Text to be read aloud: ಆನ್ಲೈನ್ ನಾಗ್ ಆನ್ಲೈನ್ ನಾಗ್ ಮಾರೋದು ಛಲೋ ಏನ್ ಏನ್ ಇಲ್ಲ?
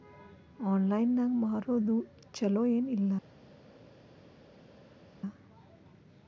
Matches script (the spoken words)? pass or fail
fail